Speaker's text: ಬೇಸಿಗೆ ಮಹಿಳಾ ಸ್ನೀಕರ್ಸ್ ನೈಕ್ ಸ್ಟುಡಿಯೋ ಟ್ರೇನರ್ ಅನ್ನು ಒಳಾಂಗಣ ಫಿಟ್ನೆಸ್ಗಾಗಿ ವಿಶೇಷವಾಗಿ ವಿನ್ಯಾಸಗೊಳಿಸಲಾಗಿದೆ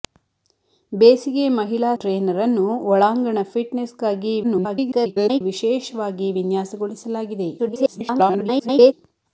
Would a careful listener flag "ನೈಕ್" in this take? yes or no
yes